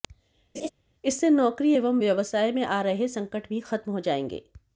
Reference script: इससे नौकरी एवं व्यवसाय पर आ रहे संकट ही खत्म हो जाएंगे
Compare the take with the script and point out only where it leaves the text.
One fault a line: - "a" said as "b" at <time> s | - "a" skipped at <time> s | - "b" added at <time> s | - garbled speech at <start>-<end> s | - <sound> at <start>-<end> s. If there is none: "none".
- laugh at 0.5-0.7 s
- "पर" said as "में" at 2.5 s
- "ही" said as "भी" at 3.5 s